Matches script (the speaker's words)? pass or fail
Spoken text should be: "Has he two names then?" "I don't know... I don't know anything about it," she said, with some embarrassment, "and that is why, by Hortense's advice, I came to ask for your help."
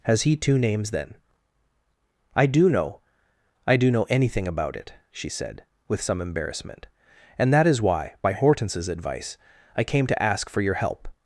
fail